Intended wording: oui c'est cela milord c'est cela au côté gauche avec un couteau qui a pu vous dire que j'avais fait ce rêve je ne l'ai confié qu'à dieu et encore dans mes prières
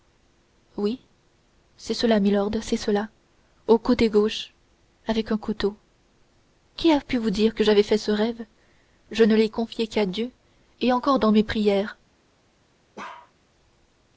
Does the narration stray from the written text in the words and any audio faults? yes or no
yes